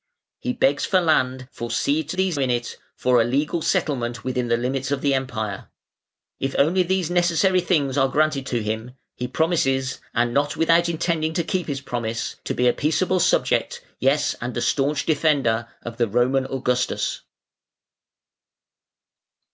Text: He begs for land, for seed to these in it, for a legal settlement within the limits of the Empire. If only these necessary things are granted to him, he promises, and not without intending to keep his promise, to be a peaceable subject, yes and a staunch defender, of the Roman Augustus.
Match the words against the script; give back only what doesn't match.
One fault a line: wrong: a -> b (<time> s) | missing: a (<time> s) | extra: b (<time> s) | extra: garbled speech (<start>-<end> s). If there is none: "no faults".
no faults